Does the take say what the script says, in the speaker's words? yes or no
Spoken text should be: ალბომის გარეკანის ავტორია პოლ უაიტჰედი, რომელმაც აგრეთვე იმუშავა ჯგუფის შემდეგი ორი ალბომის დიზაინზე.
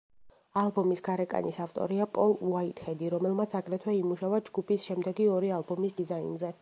yes